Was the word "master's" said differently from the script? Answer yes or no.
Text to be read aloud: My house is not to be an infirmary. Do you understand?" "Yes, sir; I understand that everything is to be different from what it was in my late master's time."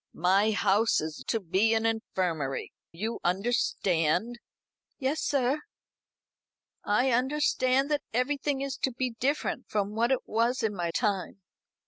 yes